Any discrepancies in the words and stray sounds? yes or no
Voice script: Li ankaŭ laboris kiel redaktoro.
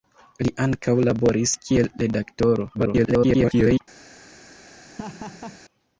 yes